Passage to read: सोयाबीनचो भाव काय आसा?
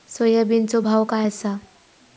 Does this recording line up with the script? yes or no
yes